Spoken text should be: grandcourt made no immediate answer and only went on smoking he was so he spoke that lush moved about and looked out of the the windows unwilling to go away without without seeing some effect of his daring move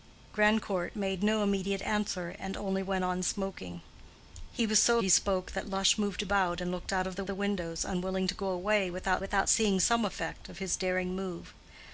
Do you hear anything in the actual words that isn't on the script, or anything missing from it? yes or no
no